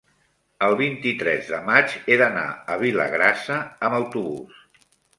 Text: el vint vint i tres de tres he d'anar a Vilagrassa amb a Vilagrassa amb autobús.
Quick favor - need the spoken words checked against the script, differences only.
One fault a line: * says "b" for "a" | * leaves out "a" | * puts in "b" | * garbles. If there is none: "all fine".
* leaves out "vint"
* says "maig" for "tres"
* leaves out "a Vilagrassa amb"